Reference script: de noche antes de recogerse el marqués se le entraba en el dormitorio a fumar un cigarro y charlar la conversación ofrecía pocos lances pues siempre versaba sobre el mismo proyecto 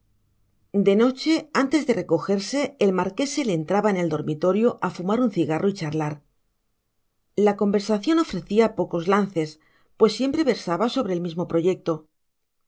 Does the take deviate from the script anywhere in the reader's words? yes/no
no